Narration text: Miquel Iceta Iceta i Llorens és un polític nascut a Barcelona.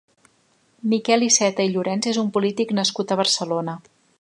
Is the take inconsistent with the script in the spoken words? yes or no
yes